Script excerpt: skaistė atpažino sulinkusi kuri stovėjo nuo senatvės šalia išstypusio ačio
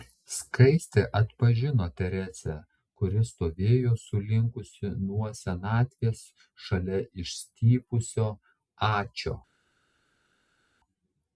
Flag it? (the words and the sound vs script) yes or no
yes